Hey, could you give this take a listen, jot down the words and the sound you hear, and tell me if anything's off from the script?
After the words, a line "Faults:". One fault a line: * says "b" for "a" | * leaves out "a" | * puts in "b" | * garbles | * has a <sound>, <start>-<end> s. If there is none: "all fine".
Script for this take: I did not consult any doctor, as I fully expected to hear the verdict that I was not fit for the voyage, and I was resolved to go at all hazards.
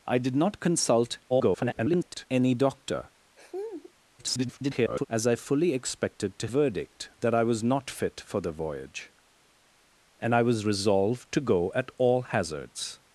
I did not consult [garbled] any doctor, [garbled] as I fully expected to verdict that I was not fit for the voyage, and I was resolved to go at all hazards.
Faults:
* garbles
* has a laugh, 3.4-3.9 s
* garbles
* leaves out "hear the"